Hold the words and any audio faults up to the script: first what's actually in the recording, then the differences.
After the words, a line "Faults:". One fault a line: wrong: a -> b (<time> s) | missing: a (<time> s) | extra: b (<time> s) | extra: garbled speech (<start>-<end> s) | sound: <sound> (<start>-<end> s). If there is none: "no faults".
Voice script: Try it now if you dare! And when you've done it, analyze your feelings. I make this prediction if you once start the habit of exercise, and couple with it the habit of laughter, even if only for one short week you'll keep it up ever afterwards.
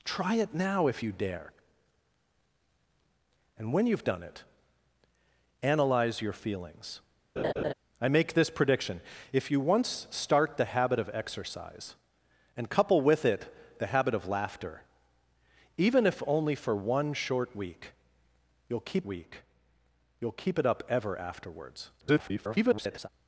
Try it now if you dare! And when you've done it, analyze your feelings. I make this prediction if you once start the habit of exercise, and couple with it the habit of laughter, even if only for one short week you'll keep week you'll keep it up ever afterwards. [garbled]
Faults:
sound: laugh (7.4-7.7 s)
extra: week you'll keep (19.0 s)
extra: garbled speech (22.0-23.1 s)